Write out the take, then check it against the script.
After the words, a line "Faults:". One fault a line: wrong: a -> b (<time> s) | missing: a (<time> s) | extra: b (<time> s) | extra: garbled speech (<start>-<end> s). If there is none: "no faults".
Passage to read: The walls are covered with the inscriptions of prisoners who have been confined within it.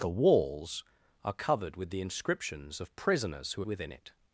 The walls are covered with the inscriptions of prisoners who within it.
Faults:
missing: have been confined (3.6 s)